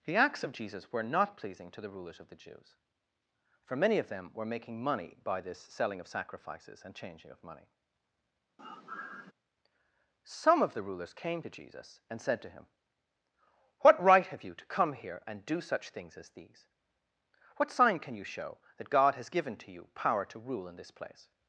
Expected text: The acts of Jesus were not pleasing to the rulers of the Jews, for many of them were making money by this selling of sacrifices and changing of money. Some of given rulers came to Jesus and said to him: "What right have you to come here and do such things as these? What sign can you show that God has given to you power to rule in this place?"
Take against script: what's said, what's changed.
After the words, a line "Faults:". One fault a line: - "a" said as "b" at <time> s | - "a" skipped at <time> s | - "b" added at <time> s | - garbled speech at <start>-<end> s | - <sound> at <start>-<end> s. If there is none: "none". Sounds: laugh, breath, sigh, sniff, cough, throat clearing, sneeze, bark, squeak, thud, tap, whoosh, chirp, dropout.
The acts of Jesus were not pleasing to the rulers of the Jews, for many of them were making money by this selling of sacrifices and changing of money. Some of the rulers came to Jesus and said to him: "What right have you to come here and do such things as these? What sign can you show that God has given to you power to rule in this place?"
Faults:
- sigh at 8.6-9.3 s
- "given" said as "the" at 10.7 s